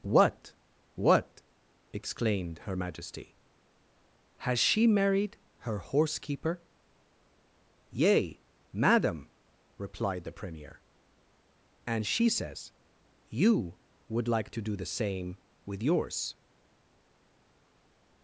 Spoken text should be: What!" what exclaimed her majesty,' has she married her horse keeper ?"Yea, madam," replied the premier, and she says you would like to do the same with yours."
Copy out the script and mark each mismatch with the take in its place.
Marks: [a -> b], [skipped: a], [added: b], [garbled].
What!" what exclaimed her majesty,' has she married her horse keeper ?"Yea, madam," replied the premier, and she says you would like to do the same with yours."